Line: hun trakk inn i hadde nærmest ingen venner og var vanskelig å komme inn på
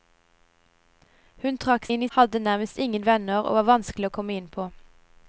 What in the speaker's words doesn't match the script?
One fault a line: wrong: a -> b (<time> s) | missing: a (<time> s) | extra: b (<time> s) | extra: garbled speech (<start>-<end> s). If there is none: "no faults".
no faults